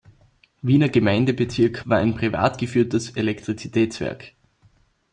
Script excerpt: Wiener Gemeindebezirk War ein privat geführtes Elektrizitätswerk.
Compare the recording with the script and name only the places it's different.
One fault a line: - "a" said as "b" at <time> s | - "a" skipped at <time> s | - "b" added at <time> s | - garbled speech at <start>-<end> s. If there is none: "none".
none